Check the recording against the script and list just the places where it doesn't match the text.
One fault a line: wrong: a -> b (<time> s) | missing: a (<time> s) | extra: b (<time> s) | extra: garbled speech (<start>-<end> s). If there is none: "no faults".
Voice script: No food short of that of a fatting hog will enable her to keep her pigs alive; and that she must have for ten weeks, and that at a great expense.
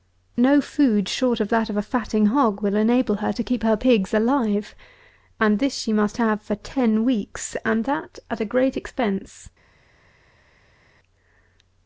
wrong: that -> this (5.6 s)